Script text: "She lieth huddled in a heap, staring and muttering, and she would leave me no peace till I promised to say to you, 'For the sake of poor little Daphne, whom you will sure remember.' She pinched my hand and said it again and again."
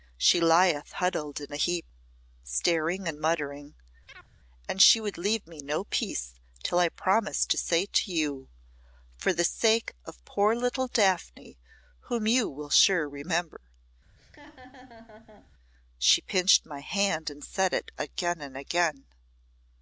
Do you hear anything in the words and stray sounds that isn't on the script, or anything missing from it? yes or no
yes